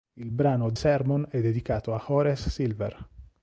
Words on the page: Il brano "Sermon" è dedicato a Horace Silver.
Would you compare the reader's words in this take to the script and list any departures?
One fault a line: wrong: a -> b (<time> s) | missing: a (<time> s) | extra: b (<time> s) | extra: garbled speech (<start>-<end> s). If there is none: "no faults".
no faults